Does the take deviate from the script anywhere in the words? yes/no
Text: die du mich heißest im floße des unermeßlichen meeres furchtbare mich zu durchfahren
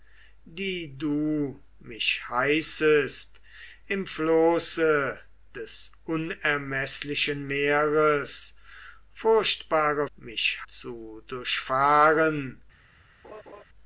no